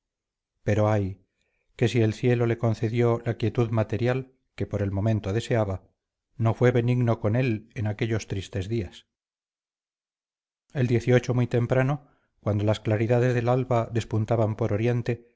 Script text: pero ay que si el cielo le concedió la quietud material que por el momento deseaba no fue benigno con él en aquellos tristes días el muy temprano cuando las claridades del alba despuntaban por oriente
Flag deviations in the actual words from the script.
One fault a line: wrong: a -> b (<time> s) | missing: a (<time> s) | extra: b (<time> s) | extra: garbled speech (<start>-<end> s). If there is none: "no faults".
no faults